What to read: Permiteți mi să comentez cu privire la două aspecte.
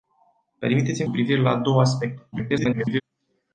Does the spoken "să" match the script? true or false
false